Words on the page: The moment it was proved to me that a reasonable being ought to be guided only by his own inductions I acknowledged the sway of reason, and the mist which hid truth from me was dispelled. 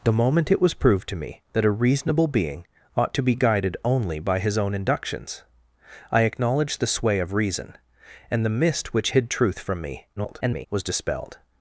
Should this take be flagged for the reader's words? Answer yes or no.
yes